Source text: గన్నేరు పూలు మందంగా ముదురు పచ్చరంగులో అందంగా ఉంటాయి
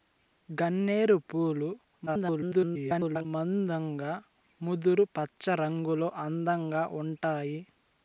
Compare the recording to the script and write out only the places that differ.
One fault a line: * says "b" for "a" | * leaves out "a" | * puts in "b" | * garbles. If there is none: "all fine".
* garbles